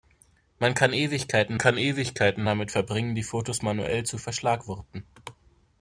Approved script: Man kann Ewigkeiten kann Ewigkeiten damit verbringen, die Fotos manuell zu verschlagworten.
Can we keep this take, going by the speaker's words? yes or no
yes